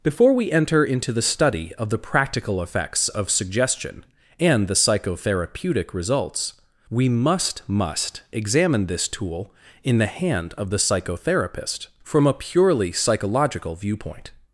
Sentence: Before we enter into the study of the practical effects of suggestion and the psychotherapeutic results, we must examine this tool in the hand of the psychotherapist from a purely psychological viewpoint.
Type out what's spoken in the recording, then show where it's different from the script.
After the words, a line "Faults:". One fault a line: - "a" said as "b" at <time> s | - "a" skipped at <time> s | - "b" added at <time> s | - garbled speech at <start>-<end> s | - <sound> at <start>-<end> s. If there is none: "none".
Before we enter into the study of the practical effects of suggestion and the psychotherapeutic results, we must must examine this tool in the hand of the psychotherapist from a purely psychological viewpoint.
Faults:
- "must" added at 7.7 s